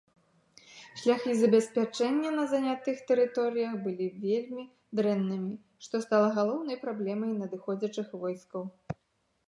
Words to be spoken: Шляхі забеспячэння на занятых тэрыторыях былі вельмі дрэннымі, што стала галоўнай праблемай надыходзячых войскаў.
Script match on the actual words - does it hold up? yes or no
yes